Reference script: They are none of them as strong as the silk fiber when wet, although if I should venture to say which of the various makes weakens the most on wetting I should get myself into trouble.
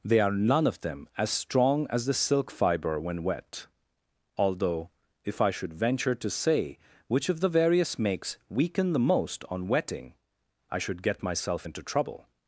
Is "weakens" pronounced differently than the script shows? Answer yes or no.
yes